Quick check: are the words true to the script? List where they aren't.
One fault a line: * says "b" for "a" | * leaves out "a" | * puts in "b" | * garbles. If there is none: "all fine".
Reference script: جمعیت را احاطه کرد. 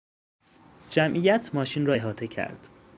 * puts in "ماشین"